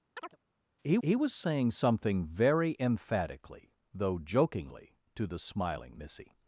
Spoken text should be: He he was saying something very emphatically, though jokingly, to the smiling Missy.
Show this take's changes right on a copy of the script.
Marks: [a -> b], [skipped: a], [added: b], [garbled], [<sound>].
[chirp] He he was saying something very emphatically, though jokingly, to the smiling Missy.